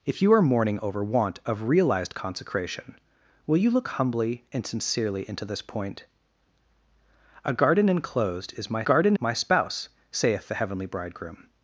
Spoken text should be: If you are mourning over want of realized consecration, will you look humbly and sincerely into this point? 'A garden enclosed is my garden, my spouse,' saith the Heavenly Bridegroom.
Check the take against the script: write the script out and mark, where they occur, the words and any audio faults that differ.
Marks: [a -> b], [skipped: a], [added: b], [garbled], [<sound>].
If you are mourning over want of realized consecration, will you look humbly and sincerely into this point? 'A garden enclosed is my garden, my spouse,' saith the Heavenly Bridegroom.